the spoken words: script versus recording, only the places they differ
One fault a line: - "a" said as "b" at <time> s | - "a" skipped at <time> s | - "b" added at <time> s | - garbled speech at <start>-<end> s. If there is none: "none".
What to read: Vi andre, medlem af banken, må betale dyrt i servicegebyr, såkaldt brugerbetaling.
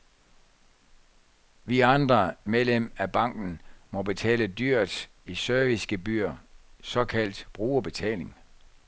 none